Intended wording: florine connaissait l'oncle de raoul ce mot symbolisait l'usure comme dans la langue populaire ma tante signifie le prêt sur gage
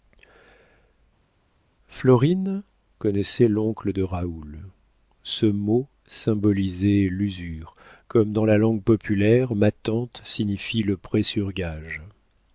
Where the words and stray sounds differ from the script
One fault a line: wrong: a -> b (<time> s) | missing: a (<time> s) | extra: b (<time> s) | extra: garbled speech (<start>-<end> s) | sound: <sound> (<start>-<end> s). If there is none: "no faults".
no faults